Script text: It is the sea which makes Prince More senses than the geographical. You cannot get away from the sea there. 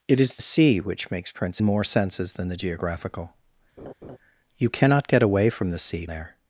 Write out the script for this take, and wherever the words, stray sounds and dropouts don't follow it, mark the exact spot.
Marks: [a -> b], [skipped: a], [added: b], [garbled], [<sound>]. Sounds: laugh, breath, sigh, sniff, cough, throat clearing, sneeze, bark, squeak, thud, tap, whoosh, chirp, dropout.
It is the sea which makes Prince More senses than the geographical. [laugh] You cannot get away from the sea there.